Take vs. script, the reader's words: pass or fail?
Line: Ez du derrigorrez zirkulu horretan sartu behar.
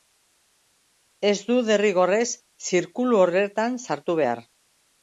pass